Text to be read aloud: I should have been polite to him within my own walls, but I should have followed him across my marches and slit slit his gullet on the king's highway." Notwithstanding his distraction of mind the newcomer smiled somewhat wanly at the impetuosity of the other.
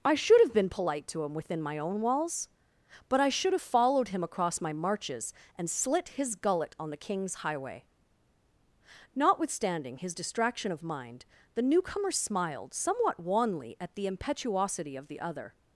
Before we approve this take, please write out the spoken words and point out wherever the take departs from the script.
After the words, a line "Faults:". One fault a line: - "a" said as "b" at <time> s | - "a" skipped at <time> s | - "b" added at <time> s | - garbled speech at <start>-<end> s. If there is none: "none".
I should have been polite to him within my own walls, but I should have followed him across my marches and slit his gullet on the king's highway." Notwithstanding his distraction of mind the newcomer smiled somewhat wanly at the impetuosity of the other.
Faults:
- "slit" skipped at 6.1 s